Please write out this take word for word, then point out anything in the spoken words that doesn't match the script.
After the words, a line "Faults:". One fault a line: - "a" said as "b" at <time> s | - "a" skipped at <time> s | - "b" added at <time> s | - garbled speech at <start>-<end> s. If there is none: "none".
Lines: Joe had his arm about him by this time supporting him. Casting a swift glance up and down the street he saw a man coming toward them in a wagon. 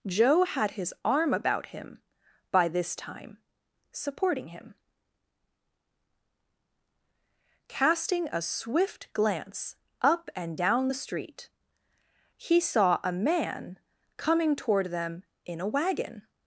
Joe had his arm about him by this time supporting him. Casting a swift glance up and down the street he saw a man coming toward them in a wagon.
Faults:
none